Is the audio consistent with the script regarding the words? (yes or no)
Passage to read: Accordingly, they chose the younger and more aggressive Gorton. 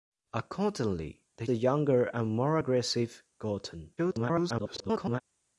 no